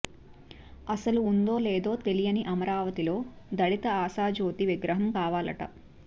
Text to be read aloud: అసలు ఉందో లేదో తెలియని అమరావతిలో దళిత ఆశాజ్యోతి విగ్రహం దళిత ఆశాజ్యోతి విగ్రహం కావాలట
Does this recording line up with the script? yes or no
no